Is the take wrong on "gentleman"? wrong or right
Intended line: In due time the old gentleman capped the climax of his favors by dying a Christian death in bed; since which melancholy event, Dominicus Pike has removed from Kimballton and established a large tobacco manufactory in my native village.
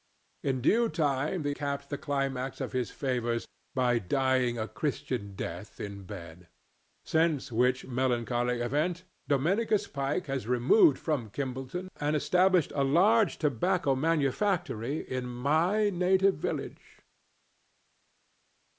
wrong